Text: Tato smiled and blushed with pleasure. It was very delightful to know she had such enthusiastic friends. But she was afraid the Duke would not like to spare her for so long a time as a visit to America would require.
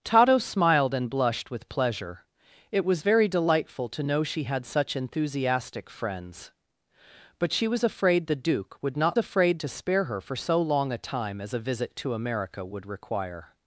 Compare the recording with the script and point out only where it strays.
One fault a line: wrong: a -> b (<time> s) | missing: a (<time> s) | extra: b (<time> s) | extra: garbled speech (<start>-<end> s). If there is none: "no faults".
wrong: like -> afraid (9.2 s)